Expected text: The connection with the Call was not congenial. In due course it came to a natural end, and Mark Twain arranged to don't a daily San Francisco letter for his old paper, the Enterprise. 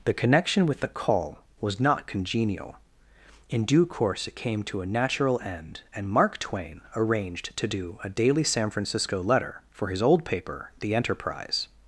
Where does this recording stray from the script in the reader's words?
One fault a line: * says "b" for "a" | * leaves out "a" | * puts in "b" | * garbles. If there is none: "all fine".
* says "do" for "don't"